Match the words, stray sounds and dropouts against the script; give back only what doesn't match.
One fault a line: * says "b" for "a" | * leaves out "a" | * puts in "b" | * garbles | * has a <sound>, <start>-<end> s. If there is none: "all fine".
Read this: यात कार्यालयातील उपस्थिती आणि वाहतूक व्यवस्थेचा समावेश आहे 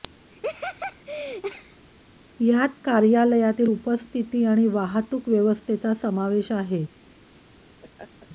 * has a laugh, 0.3-1.8 s
* has a laugh, 7.8-8.3 s